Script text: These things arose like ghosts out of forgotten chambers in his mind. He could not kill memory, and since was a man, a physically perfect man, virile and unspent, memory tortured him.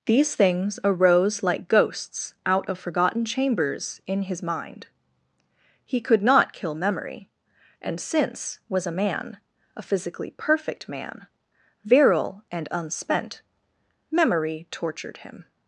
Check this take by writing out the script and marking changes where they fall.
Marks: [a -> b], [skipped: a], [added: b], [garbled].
These things arose like ghosts out of forgotten chambers in his mind. He could not kill memory, and since was a man, a physically perfect man, virile and unspent, memory tortured him.